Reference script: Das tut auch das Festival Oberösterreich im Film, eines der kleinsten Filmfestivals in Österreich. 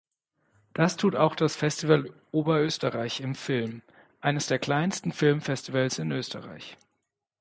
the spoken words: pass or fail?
pass